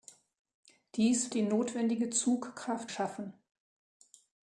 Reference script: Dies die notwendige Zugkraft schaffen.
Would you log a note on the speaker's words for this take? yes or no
no